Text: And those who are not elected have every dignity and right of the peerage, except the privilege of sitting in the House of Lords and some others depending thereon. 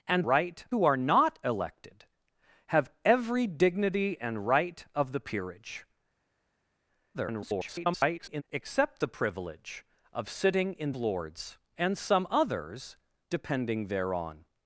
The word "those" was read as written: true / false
false